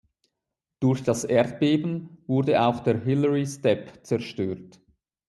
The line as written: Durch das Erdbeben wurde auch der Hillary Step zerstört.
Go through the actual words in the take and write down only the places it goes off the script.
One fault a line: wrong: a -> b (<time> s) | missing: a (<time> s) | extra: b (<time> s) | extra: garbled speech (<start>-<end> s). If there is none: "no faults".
no faults